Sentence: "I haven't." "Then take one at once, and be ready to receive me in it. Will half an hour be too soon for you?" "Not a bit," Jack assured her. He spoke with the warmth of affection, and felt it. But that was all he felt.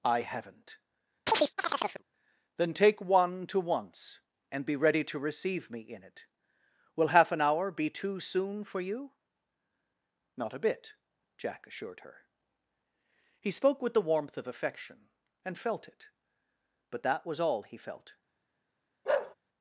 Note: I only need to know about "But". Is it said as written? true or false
true